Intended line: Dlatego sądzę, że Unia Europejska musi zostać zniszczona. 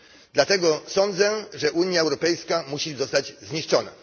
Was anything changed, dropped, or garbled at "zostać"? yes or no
no